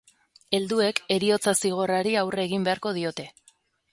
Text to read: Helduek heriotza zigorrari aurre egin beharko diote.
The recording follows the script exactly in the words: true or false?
true